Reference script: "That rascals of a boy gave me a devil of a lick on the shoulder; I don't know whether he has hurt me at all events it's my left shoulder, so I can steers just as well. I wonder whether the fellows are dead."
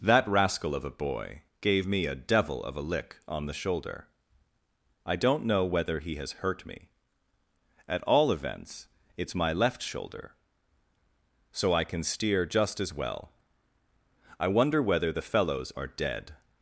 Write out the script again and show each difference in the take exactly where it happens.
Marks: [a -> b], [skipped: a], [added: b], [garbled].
"That [rascals -> rascal] of a boy gave me a devil of a lick on the shoulder; I don't know whether he has hurt me at all events it's my left shoulder, so I can [steers -> steer] just as well. I wonder whether the fellows are dead."